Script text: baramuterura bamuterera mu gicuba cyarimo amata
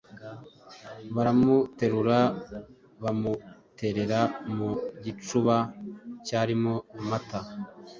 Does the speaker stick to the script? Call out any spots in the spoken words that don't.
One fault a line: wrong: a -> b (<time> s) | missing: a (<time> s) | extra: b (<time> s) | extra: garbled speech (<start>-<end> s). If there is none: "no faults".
no faults